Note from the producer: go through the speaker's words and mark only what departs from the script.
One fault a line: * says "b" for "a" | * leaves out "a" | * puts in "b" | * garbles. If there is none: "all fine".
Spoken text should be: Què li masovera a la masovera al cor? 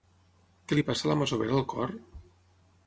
* says "passa" for "masovera"